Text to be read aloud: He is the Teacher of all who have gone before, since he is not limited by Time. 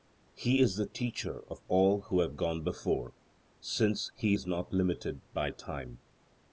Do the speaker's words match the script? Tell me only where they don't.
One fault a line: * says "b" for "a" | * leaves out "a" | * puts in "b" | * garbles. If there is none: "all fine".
all fine